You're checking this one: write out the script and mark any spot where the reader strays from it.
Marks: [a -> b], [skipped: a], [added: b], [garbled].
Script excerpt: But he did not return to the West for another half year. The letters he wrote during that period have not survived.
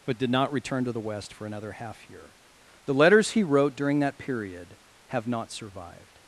But [skipped: he] did not return to the West for another half year. The letters he wrote during that period have not survived.